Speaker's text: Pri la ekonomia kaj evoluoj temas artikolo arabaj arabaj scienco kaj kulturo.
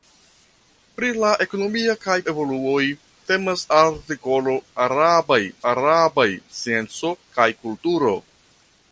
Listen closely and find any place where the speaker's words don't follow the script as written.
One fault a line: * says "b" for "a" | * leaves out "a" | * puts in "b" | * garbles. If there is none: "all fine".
all fine